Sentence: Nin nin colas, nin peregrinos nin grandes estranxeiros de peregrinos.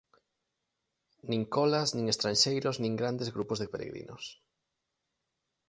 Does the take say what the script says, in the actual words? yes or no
no